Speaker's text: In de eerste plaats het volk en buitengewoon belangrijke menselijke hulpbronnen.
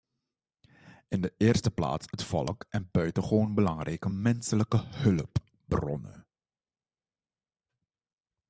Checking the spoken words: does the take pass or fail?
pass